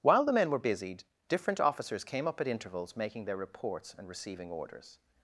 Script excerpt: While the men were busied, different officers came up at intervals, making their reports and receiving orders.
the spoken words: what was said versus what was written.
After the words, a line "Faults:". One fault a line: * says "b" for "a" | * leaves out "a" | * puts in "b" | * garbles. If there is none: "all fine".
While the men were busied, different officers came up at intervals, making their reports and receiving orders.
Faults:
all fine